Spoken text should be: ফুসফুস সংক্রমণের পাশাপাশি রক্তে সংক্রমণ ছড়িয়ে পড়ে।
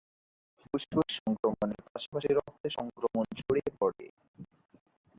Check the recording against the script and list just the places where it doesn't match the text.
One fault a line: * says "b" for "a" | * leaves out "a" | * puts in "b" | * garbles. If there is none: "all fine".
all fine